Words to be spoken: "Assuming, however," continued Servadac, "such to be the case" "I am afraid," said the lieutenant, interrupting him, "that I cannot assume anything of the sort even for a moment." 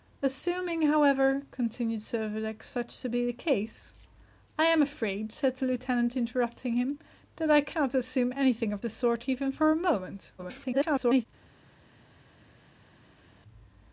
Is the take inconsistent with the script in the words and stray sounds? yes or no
yes